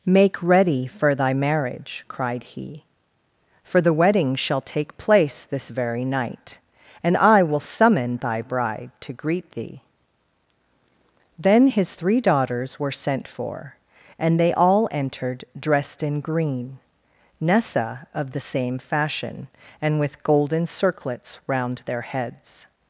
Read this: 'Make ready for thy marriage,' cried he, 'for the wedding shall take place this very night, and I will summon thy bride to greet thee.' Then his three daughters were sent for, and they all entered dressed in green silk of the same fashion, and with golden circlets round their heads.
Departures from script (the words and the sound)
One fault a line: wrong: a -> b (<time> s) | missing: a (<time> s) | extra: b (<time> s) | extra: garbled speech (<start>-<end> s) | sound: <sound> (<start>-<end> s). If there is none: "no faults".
wrong: silk -> nessa (17.4 s)